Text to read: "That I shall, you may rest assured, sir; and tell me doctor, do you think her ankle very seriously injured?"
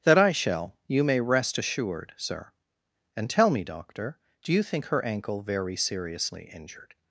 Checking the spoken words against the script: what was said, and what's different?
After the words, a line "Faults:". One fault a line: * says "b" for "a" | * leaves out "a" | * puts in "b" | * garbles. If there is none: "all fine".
"That I shall, you may rest assured, sir; and tell me doctor, do you think her ankle very seriously injured?"
Faults:
all fine